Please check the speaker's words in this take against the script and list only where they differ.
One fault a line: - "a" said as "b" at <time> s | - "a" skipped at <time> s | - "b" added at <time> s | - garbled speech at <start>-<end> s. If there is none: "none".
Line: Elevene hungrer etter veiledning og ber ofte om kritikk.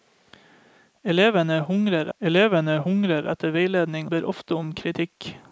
- "elevene hungrer" added at 2.2 s
- "og" skipped at 4.1 s